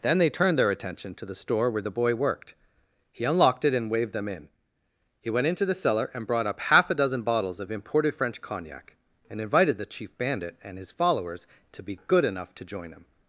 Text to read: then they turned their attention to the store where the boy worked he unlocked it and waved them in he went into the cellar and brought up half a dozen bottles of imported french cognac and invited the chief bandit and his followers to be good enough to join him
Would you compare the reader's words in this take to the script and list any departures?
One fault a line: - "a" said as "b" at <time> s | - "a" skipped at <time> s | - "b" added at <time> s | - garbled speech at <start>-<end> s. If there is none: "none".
none